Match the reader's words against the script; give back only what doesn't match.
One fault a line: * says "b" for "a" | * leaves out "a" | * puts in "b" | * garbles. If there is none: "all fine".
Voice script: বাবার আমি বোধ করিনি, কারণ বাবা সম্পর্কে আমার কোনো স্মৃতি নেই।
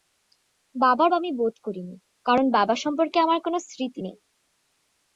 all fine